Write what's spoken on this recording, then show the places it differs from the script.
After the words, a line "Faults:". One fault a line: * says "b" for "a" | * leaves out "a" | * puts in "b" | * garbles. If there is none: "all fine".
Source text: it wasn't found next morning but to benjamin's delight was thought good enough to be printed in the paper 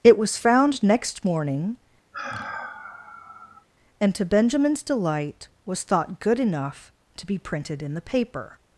it was found next morning and to benjamin's delight was thought good enough to be printed in the paper
Faults:
* says "was" for "wasn't"
* says "and" for "but"